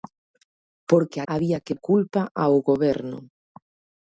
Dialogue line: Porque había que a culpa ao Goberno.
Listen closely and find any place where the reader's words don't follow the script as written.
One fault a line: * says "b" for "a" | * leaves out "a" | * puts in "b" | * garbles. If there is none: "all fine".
all fine